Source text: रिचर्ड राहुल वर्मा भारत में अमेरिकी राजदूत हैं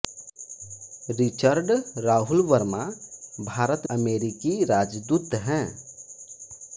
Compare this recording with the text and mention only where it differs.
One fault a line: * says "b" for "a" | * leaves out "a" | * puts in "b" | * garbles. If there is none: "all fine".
* leaves out "में"